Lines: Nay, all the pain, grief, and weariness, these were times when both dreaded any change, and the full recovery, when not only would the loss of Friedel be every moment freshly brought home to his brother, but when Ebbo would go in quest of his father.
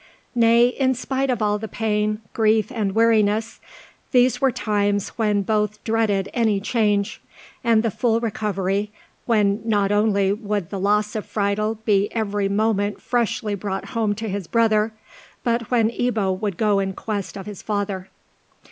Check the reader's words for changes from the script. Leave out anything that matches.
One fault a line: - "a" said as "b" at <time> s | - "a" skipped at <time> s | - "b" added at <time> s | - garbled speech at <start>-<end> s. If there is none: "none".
- "in spite of" added at 0.7 s